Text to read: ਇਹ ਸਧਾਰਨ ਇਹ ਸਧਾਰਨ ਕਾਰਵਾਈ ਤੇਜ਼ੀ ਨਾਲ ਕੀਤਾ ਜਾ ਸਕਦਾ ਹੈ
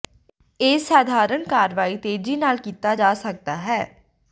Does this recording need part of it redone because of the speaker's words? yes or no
yes